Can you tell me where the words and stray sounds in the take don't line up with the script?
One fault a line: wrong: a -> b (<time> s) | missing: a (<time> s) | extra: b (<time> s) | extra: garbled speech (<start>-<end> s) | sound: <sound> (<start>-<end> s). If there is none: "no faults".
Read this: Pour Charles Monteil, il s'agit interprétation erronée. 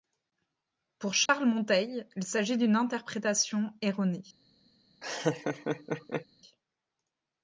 sound: dropout (1.3-1.3 s)
extra: d'une (2.6 s)
sound: laugh (5.0-6.3 s)